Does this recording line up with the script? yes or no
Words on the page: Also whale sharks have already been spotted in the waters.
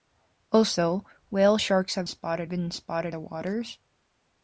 no